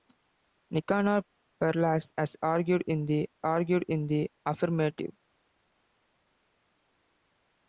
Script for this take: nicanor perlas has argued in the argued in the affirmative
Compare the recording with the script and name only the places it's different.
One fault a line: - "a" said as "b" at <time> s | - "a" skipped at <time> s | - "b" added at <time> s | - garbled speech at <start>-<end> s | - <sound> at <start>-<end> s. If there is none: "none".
none